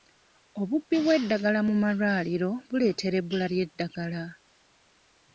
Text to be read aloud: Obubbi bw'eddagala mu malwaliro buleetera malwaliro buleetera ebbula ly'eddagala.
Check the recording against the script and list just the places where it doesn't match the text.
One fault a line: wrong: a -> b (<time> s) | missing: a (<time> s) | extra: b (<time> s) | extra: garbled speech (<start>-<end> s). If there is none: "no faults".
missing: malwaliro buleetera (3.1 s)